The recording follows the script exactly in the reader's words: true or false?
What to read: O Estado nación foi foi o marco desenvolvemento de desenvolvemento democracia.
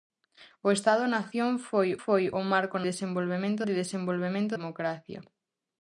true